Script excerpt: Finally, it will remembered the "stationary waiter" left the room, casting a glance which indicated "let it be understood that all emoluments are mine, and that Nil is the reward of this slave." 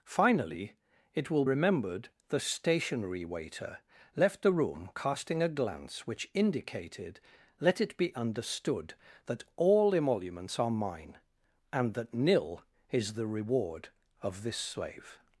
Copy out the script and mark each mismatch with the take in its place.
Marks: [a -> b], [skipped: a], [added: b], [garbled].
Finally, it will remembered the "stationary waiter" left the room, casting a glance which indicated "let it be understood that all emoluments are mine, and that Nil is the reward of this slave."